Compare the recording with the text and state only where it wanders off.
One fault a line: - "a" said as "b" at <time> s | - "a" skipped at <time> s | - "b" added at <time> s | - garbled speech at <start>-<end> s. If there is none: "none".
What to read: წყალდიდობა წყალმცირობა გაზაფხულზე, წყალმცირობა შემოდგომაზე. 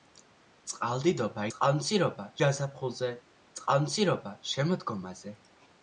none